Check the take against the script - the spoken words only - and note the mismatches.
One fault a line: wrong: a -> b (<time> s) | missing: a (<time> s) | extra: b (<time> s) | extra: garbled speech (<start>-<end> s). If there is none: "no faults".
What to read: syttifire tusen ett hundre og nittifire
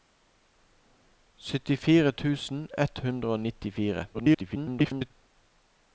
extra: garbled speech (4.1-5.1 s)